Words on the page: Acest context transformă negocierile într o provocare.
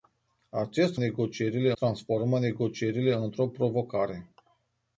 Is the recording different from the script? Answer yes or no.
yes